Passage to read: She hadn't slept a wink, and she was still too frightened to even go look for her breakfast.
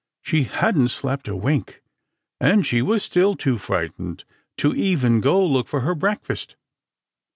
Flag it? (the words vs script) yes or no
no